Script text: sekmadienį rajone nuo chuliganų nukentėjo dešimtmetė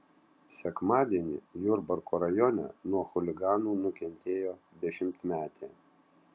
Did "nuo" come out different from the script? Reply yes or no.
no